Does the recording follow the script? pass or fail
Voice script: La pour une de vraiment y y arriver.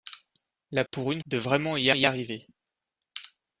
pass